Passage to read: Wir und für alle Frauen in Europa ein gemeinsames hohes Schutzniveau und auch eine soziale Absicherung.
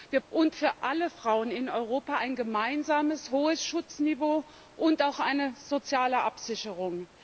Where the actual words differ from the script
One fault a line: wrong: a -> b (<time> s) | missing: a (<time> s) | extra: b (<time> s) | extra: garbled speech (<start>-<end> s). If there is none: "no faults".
no faults